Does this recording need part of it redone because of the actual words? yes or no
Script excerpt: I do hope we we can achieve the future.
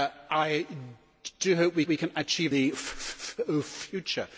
no